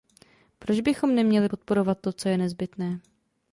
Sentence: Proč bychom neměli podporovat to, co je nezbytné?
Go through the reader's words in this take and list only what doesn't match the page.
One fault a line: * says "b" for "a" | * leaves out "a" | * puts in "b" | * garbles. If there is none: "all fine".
all fine